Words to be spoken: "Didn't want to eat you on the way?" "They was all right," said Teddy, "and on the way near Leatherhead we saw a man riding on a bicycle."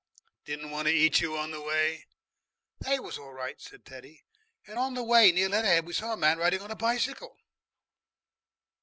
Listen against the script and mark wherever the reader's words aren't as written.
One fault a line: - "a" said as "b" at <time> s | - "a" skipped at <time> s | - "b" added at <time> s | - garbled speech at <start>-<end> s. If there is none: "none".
none